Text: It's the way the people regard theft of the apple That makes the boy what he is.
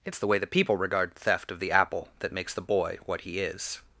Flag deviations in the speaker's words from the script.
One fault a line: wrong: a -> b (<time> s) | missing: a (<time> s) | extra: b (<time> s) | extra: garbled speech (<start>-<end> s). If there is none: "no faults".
no faults